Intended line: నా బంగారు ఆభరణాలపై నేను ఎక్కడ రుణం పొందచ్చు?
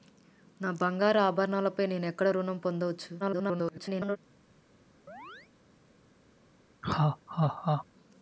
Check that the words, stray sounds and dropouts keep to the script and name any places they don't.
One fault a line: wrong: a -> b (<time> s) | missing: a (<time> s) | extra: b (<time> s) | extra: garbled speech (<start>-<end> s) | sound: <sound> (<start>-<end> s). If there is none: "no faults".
extra: garbled speech (3.2-4.2 s)
sound: chirp (5.1-5.5 s)
sound: laugh (6.8-7.9 s)